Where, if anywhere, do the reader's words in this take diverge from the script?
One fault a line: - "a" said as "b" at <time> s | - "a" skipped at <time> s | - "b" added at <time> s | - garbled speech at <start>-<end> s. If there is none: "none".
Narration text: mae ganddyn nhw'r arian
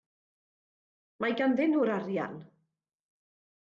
none